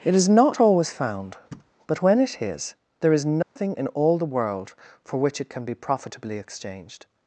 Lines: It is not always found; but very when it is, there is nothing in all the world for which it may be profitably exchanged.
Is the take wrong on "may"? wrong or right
wrong